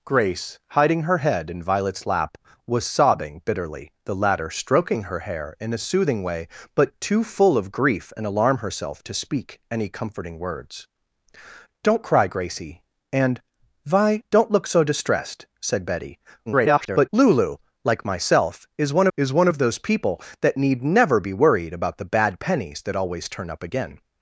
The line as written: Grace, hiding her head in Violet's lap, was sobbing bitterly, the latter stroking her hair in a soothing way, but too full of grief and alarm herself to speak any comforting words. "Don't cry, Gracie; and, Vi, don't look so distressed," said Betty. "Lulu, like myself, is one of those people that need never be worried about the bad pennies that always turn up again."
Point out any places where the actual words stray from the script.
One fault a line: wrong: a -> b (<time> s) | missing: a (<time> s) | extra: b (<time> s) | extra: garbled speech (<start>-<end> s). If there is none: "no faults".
extra: garbled speech (16.5-17.1 s)
extra: is one (19.2 s)